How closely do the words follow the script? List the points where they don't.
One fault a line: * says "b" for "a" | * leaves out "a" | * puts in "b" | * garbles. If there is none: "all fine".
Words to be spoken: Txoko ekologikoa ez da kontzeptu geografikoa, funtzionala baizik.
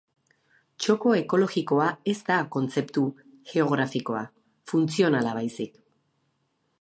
all fine